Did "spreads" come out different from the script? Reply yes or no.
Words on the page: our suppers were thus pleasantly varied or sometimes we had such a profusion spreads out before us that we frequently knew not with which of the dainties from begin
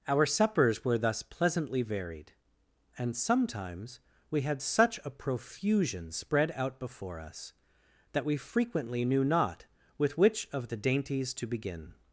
yes